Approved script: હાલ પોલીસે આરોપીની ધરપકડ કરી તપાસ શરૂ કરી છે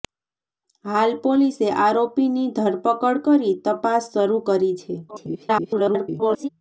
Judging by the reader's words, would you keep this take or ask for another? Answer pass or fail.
fail